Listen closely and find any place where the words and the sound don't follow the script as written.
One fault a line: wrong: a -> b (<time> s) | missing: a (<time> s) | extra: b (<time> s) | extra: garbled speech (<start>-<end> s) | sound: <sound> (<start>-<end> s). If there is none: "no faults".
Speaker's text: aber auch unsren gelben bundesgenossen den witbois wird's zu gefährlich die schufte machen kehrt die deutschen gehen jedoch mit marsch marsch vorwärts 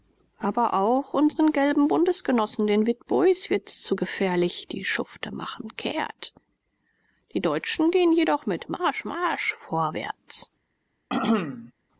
sound: throat clearing (11.1-11.7 s)